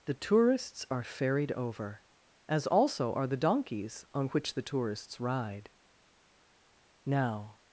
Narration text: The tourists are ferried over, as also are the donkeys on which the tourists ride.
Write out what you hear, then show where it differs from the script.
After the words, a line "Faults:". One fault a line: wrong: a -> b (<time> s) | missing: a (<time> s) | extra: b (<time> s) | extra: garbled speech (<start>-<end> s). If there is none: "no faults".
The tourists are ferried over, as also are the donkeys on which the tourists ride. Now
Faults:
extra: Now (7.0 s)